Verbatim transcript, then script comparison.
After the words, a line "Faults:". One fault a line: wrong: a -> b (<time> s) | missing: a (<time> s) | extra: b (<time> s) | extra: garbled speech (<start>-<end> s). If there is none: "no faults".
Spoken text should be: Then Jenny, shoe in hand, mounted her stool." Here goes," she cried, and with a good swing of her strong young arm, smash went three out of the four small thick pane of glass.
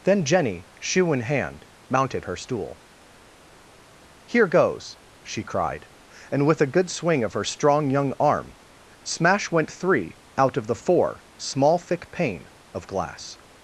Then Jenny, shoe in hand, mounted her stool." Here goes," she cried, and with a good swing of her strong young arm, smash went three out of the four small thick pane of glass.
Faults:
no faults